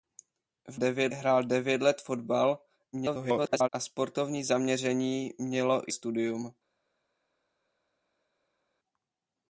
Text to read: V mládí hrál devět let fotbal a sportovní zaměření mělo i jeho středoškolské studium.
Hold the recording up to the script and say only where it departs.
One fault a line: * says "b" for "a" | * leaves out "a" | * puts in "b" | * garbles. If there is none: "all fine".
* says "devět" for "mládí"
* garbles
* leaves out "jeho středoškolské"